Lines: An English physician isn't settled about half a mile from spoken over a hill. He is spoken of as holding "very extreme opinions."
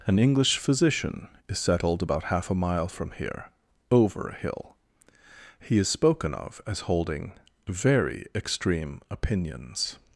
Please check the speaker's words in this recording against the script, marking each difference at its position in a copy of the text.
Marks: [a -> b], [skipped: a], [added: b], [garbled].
An English physician [isn't -> is] settled about half a mile from [spoken -> here] over a hill. He is spoken of as holding "very extreme opinions."